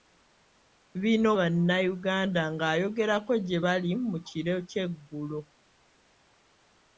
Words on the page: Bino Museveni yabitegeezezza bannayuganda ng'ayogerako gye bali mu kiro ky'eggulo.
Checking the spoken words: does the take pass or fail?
fail